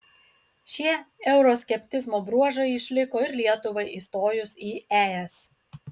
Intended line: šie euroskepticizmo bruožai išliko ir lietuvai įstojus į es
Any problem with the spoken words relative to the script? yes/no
no